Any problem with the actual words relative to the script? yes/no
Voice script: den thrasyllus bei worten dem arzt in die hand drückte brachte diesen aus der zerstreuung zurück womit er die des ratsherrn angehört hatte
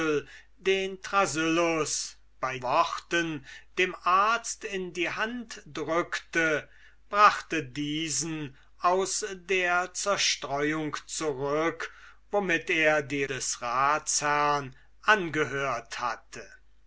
no